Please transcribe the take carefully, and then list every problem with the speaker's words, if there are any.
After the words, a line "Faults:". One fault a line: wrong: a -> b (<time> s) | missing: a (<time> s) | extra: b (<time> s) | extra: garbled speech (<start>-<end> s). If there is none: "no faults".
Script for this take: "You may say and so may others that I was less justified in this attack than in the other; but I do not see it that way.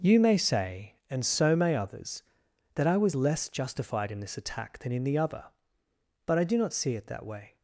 "You may say and so may others that I was less justified in this attack than in the other; but I do not see it that way.
Faults:
no faults